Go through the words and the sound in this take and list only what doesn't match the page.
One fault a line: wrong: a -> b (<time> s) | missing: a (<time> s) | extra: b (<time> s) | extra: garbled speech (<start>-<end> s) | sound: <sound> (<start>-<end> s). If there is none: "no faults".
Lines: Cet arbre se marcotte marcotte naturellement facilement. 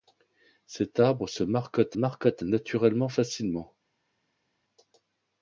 no faults